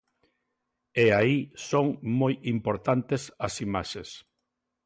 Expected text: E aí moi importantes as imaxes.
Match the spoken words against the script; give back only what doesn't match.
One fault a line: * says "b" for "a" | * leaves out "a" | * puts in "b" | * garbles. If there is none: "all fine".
* puts in "son"